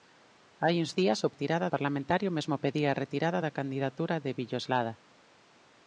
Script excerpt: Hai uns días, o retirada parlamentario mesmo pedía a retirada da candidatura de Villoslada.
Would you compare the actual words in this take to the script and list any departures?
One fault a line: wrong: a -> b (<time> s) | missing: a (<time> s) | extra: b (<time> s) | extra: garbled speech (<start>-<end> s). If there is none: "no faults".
no faults